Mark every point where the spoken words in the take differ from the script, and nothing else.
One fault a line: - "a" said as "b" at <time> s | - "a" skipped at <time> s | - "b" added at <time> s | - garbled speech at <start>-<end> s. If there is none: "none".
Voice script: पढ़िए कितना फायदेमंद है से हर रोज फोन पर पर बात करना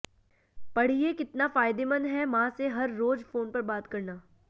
- "मां" added at 2.2 s
- "पर" skipped at 3.6 s